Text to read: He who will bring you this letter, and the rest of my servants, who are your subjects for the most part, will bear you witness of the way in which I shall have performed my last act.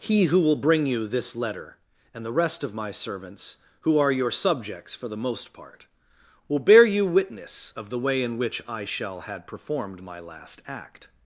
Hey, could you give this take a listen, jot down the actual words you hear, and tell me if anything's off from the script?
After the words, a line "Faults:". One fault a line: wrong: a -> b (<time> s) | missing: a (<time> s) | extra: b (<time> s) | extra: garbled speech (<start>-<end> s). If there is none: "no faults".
He who will bring you this letter, and the rest of my servants, who are your subjects for the most part, will bear you witness of the way in which I shall had performed my last act.
Faults:
wrong: have -> had (9.2 s)